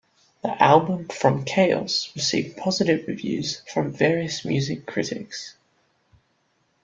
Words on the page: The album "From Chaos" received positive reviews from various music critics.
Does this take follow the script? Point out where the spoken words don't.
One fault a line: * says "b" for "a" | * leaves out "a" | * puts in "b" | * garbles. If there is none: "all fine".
all fine